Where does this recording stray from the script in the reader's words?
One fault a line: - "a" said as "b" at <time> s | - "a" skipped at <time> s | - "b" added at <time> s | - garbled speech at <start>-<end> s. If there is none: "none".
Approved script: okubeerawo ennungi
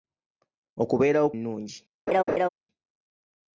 none